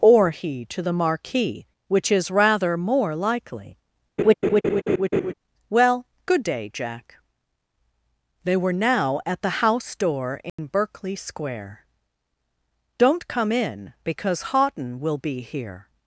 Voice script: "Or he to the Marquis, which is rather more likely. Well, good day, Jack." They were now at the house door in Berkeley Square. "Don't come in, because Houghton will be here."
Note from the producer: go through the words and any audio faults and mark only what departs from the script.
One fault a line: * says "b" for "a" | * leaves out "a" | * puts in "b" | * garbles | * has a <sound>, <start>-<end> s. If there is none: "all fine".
* has a laugh, 4.2-5.3 s
* has a dropout, 10.5-10.6 s